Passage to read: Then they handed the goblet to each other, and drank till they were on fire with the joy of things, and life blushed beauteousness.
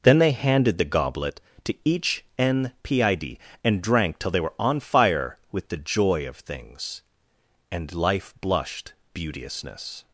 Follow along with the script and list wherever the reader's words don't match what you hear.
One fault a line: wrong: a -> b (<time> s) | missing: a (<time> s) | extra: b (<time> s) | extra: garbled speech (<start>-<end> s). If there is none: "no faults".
wrong: other -> npid (2.4 s)